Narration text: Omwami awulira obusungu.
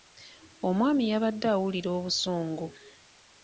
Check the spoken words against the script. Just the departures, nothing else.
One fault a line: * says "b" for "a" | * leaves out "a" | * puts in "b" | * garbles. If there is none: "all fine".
* puts in "yabadde"